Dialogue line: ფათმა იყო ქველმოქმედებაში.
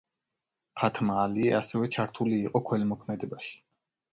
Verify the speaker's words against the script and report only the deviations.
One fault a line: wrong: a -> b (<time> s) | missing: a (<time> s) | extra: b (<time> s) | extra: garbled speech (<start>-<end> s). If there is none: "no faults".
extra: ალიე ასევე ჩართული (1.2 s)